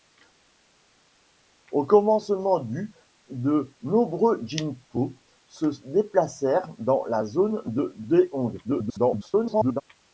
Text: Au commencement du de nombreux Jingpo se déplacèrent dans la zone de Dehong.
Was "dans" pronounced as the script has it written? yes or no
yes